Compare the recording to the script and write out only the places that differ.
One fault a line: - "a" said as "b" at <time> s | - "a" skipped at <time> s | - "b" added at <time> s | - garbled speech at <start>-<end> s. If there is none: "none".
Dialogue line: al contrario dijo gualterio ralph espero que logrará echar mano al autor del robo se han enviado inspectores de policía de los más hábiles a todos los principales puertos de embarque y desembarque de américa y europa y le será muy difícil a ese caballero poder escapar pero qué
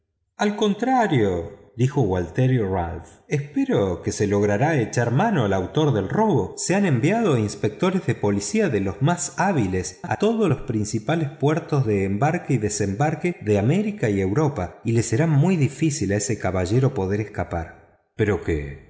- "se" added at 4.1 s